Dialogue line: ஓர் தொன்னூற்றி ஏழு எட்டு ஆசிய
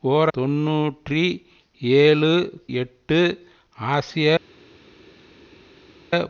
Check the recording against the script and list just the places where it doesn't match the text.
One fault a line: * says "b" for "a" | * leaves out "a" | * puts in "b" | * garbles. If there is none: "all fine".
all fine